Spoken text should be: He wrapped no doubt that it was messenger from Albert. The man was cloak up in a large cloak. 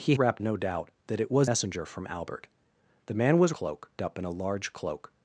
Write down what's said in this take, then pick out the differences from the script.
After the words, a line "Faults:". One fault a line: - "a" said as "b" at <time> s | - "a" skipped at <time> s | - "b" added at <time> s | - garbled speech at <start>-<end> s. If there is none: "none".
He wrapped no doubt that it was messenger from Albert. The man was cloak up in a large cloak.
Faults:
none